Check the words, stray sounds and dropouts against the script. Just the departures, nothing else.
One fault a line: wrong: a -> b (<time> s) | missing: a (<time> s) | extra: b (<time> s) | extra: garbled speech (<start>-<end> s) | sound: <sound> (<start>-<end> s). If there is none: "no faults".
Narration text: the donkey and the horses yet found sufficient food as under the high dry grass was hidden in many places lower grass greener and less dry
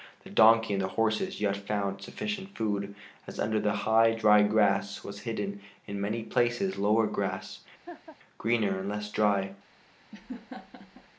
sound: laugh (7.9-8.2 s)
sound: laugh (10.1-11.1 s)